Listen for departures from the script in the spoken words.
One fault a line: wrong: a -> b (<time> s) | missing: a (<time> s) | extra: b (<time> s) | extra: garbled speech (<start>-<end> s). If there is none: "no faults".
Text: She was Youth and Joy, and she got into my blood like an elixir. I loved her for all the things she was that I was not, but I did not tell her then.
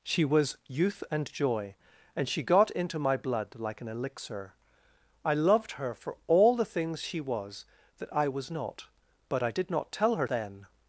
no faults